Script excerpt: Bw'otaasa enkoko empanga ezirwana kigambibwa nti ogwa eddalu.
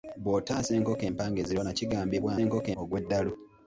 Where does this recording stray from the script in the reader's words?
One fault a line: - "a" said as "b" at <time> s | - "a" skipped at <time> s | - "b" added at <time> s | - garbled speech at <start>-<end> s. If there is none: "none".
- "nti" said as "enkoko" at 2.4 s